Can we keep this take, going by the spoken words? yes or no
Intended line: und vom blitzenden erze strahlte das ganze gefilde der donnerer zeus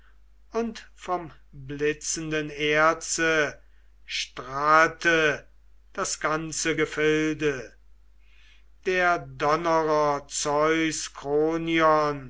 yes